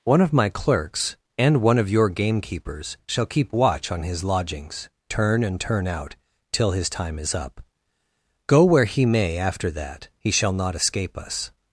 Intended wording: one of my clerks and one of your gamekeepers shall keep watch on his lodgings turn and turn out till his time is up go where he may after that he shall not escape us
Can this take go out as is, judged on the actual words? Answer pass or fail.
pass